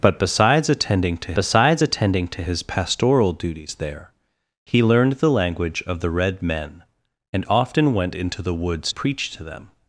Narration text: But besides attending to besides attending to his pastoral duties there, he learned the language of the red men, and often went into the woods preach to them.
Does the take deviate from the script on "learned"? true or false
false